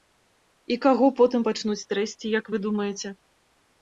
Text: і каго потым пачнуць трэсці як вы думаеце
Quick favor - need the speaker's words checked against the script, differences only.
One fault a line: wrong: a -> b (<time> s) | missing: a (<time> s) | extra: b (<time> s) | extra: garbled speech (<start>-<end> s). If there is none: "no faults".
no faults